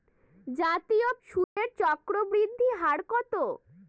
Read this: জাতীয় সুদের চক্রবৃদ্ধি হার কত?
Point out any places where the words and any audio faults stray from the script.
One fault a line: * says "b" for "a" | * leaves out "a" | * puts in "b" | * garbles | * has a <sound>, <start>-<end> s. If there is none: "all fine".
* has a dropout, 1.4-1.6 s